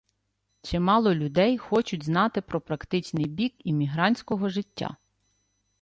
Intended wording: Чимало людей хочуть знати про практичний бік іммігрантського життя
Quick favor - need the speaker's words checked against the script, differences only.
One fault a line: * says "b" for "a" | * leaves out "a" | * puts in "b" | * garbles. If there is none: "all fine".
all fine